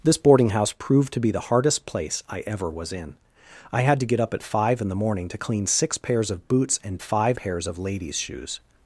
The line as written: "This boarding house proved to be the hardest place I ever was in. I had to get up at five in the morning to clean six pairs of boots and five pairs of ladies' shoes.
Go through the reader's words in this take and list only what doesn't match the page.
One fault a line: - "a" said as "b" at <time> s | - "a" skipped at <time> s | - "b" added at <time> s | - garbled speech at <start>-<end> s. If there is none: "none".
none